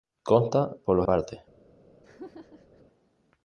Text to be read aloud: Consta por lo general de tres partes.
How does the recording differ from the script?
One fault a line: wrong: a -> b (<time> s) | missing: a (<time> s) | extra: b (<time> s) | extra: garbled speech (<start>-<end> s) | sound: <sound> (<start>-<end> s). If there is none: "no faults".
missing: general de tres (1.1 s)
sound: laugh (2.0-2.8 s)